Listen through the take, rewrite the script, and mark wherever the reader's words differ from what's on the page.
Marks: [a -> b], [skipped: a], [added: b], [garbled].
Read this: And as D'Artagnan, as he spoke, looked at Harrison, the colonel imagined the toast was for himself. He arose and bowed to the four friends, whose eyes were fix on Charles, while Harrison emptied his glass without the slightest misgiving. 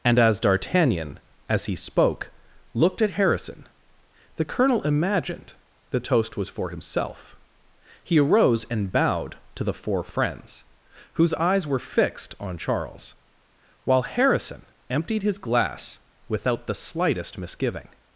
And as D'Artagnan, as he spoke, looked at Harrison, the colonel imagined the toast was for himself. He arose and bowed to the four friends, whose eyes were [fix -> fixed] on Charles, while Harrison emptied his glass without the slightest misgiving.